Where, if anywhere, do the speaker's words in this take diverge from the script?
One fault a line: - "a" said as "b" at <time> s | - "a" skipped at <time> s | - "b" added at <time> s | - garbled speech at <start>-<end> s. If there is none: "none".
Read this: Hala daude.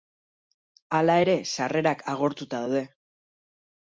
- "ere sarrerak agortuta" added at 1.2 s